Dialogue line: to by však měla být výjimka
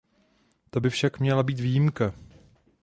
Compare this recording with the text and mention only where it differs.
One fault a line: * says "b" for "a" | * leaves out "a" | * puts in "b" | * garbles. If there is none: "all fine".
all fine